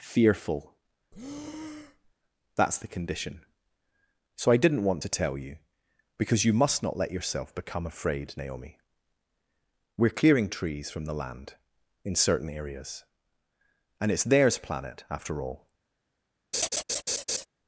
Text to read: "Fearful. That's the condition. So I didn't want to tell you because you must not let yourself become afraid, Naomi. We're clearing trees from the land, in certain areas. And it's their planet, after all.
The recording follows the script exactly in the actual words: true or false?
false